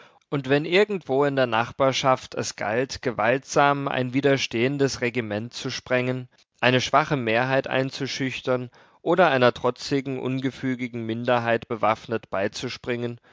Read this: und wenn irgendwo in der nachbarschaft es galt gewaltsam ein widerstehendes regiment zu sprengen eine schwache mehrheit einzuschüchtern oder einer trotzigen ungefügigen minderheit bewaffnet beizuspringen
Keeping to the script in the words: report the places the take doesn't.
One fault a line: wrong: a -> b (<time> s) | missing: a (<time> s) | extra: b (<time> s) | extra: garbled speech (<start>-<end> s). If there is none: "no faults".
no faults